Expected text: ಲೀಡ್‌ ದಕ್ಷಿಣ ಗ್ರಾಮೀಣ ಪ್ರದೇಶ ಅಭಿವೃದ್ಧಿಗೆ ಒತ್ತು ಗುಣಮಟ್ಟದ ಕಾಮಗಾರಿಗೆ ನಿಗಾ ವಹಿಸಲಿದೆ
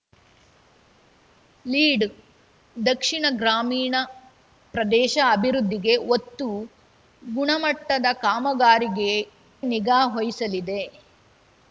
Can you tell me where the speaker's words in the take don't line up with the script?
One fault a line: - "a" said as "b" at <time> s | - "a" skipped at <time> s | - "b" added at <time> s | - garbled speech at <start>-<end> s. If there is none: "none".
none